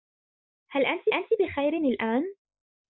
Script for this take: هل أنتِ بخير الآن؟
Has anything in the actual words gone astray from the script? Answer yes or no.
yes